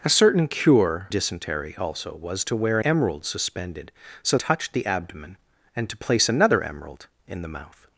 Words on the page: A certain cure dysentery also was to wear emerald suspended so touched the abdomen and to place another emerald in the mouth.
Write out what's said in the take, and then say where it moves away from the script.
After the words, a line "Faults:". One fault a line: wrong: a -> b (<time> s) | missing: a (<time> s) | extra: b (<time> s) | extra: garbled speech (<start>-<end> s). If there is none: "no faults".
A certain cure dysentery also was to wear emerald suspended so touched the abdomen and to place another emerald in the mouth.
Faults:
no faults